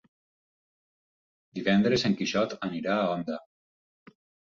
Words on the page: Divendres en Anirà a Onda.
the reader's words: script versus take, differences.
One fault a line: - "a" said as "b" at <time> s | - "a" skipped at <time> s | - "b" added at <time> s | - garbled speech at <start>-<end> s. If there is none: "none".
- "Quixot" added at 2.2 s